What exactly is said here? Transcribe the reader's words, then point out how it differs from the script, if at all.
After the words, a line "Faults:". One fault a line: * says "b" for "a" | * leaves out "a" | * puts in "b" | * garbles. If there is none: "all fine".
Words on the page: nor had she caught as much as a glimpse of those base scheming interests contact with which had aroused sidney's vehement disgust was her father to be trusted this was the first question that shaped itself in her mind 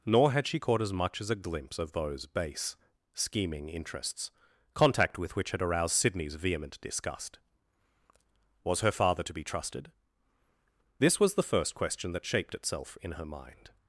nor had she caught as much as a glimpse of those base scheming interests contact with which had aroused sidney's vehement disgust was her father to be trusted this was the first question that shaped itself in her mind
Faults:
all fine